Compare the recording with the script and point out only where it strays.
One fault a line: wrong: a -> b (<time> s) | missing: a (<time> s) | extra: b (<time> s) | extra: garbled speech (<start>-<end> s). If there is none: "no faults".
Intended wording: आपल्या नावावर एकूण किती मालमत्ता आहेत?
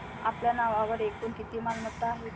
no faults